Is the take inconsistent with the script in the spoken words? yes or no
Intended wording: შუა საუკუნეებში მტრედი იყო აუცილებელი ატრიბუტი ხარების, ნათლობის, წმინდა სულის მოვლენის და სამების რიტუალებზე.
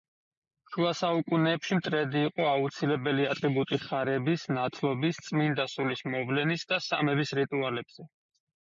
no